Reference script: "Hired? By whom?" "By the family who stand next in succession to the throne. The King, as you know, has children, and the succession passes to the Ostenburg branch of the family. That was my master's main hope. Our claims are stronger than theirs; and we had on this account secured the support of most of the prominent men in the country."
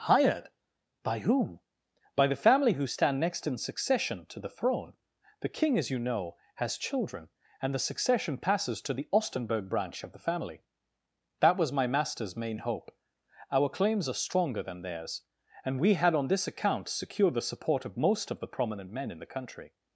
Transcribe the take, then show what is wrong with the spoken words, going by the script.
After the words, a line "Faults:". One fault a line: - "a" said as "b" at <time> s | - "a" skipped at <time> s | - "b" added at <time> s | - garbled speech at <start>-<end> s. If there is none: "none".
"Hired? By whom?" "By the family who stand next in succession to the throne. The King, as you know, has children, and the succession passes to the Ostenburg branch of the family. That was my master's main hope. Our claims are stronger than theirs; and we had on this account secured the support of most of the prominent men in the country."
Faults:
none